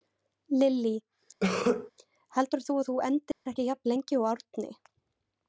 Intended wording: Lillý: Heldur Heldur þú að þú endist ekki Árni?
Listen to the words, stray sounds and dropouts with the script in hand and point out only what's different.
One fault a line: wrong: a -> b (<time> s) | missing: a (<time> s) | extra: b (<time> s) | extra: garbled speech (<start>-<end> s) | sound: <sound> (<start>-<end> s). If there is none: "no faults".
sound: cough (1.4-1.9 s)
missing: Heldur (2.7 s)
sound: dropout (3.3-3.5 s)
extra: jafn lengi og (3.7 s)